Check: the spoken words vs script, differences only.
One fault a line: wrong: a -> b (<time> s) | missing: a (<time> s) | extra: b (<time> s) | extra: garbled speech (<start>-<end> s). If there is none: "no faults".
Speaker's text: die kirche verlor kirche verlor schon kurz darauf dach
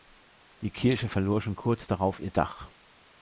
missing: kirche verlor (1.4 s)
extra: ihr (2.2 s)